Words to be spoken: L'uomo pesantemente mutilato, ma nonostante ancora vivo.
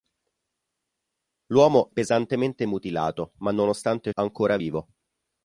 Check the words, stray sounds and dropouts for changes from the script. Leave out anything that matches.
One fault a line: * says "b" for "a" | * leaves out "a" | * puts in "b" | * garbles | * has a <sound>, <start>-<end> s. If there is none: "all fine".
all fine